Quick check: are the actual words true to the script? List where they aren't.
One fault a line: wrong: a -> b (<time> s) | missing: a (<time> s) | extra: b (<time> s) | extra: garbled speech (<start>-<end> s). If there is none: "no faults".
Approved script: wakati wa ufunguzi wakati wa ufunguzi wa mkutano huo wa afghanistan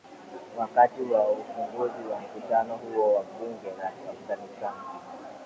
missing: wakati (2.0 s)
missing: ufunguzi wa (2.2 s)
extra: bunge la (3.2 s)